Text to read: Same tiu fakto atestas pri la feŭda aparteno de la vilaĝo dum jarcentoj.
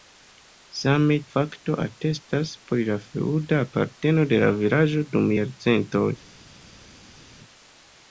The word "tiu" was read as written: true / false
false